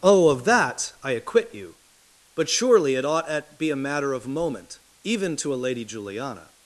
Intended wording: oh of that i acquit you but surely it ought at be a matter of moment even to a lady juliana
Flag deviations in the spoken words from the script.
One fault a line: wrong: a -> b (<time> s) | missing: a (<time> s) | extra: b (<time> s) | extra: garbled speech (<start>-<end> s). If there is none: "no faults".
no faults